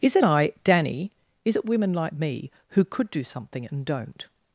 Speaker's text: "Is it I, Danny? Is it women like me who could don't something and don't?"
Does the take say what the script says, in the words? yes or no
no